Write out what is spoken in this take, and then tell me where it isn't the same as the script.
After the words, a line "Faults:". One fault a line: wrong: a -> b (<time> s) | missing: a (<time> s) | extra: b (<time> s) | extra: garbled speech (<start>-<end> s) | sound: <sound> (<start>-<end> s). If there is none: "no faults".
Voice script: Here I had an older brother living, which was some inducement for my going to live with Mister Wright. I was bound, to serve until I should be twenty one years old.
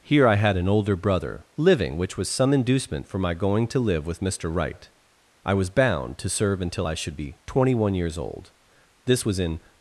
Here I had an older brother living, which was some inducement for my going to live with Mister Wright. I was bound, to serve until I should be twenty one years old. This was in
Faults:
extra: This was in (9.1 s)